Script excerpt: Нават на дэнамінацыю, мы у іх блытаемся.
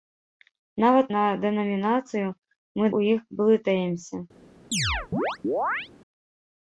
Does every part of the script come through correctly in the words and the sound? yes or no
no